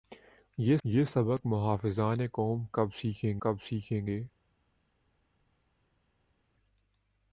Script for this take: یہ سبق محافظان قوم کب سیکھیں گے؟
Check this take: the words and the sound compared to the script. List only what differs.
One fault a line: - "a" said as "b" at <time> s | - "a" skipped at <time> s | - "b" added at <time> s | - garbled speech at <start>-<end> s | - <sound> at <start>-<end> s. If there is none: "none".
- "یہ" added at 0.8 s
- "کب سیکھیں" added at 3.4 s